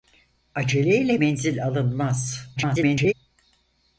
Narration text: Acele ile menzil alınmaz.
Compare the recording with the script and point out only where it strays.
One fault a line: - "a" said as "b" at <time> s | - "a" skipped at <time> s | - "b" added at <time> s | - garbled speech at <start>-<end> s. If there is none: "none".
- garbled speech at 2.6-3.1 s